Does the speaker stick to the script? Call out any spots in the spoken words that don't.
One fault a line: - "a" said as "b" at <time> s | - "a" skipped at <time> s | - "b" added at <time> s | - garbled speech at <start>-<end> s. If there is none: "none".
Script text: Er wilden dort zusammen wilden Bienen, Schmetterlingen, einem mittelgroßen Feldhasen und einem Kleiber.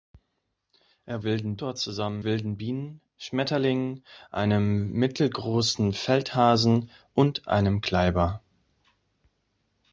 none